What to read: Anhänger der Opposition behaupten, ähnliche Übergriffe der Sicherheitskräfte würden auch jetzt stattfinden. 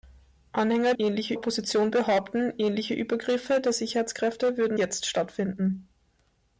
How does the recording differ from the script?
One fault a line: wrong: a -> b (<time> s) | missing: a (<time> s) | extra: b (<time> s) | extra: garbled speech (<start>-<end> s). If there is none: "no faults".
wrong: der -> ähnliche (1.0 s)
missing: auch (4.8 s)